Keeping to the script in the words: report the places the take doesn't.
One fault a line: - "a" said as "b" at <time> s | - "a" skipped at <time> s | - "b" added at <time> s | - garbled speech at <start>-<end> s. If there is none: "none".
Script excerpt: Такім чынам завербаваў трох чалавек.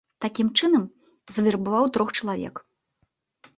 none